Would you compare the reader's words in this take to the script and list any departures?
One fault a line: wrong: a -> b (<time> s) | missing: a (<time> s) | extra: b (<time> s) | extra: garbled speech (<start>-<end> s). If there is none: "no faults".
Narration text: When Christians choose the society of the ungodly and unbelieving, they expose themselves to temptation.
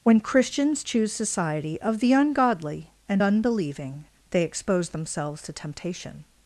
missing: the (1.1 s)